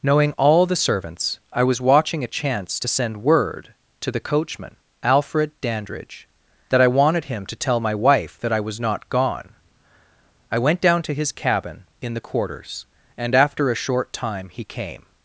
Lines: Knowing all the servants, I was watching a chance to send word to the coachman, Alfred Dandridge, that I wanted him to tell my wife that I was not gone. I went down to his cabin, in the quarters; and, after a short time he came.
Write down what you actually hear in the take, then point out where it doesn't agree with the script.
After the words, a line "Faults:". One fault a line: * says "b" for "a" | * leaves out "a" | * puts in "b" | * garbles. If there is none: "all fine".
Knowing all the servants, I was watching a chance to send word to the coachman, Alfred Dandridge, that I wanted him to tell my wife that I was not gone. I went down to his cabin, in the quarters; and, after a short time he came.
Faults:
all fine